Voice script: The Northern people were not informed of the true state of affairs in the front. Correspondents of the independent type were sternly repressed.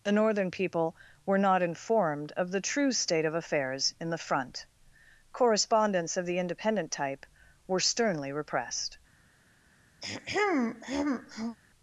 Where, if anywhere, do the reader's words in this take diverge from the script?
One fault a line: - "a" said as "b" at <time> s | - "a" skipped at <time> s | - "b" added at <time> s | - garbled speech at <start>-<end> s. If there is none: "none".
none